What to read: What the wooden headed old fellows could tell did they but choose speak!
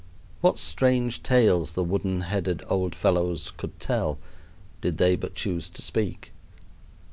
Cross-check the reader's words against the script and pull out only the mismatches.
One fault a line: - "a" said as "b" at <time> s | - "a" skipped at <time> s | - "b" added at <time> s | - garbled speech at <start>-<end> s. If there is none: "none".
- "strange tales" added at 0.6 s
- "to" added at 5.7 s